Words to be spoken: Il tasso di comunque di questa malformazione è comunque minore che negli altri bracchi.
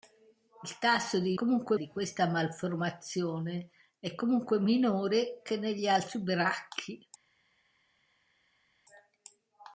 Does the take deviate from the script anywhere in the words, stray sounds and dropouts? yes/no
no